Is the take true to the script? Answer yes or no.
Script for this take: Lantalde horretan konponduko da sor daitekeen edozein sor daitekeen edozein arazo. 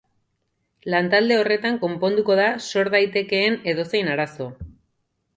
no